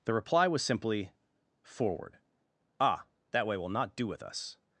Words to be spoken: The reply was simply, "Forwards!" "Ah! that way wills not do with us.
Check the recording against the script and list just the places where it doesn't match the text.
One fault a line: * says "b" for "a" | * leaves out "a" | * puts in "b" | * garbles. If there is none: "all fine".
* says "Forward" for "Forwards"
* says "will" for "wills"